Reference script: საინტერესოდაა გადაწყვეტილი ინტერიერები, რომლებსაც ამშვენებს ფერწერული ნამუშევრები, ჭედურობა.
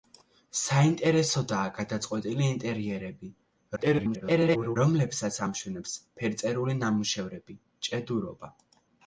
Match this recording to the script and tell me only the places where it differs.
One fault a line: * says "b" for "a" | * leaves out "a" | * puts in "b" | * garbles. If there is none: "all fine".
* garbles